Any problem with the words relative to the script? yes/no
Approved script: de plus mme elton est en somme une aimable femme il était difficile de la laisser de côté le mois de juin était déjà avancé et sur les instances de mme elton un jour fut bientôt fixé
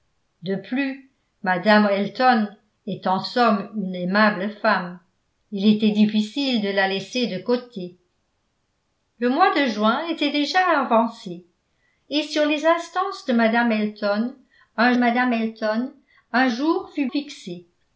yes